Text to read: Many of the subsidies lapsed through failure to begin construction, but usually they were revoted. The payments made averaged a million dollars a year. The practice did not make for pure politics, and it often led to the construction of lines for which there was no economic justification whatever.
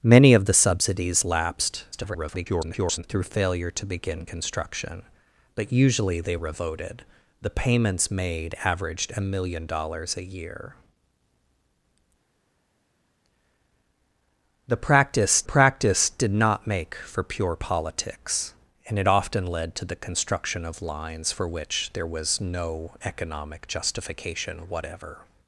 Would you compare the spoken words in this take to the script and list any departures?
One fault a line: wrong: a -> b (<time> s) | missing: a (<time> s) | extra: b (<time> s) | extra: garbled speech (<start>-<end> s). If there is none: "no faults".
extra: garbled speech (1.9-3.0 s)
missing: were (6.4 s)
extra: practice (15.4 s)